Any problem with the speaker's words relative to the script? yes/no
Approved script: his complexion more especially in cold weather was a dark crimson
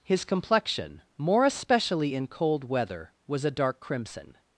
no